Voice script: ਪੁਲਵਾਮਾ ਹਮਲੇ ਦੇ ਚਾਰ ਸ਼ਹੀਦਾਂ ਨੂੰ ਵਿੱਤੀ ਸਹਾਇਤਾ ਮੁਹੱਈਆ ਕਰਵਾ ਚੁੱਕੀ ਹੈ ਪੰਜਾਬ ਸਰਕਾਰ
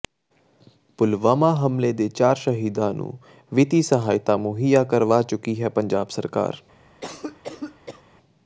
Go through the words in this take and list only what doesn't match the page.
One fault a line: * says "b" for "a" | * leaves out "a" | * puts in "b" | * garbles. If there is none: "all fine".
all fine